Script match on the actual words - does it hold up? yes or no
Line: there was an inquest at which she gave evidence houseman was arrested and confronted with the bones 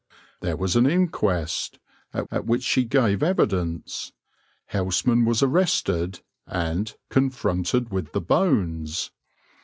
no